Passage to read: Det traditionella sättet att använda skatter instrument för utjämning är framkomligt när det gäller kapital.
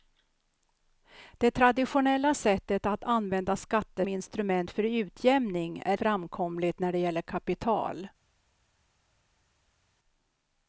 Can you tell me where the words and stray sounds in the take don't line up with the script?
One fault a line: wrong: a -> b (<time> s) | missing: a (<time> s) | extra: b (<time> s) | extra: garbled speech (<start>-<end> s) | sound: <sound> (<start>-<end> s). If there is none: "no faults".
no faults